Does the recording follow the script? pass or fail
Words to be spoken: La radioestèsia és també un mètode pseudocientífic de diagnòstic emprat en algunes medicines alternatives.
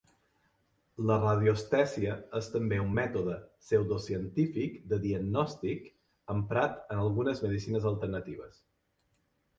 pass